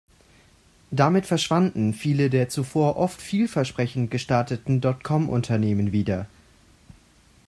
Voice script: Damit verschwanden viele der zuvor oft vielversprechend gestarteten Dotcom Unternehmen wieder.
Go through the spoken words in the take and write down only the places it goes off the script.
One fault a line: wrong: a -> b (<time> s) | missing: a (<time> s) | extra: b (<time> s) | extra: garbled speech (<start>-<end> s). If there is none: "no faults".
no faults